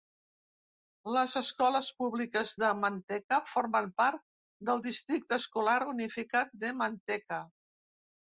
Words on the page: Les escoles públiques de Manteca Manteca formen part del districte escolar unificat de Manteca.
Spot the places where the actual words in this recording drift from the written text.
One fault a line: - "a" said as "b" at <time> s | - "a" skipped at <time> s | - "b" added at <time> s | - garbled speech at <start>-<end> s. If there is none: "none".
- "Manteca" skipped at 3.4 s